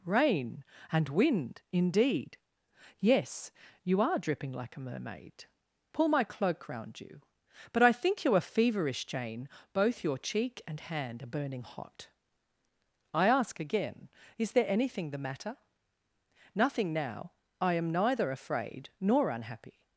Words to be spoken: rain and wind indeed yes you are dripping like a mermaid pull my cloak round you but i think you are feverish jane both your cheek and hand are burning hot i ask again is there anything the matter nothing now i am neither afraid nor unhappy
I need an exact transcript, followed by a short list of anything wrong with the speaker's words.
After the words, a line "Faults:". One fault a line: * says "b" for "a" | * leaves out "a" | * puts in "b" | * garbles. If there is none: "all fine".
rain and wind indeed yes you are dripping like a mermaid pull my cloak round you but i think you are feverish jane both your cheek and hand are burning hot i ask again is there anything the matter nothing now i am neither afraid nor unhappy
Faults:
all fine